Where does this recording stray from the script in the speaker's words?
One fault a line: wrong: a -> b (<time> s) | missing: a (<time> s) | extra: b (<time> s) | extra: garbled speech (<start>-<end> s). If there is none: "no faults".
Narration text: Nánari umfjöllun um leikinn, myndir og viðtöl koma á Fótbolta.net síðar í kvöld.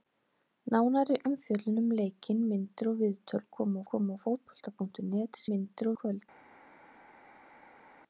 extra: koma (3.9 s)
wrong: síðar -> myndir (5.5 s)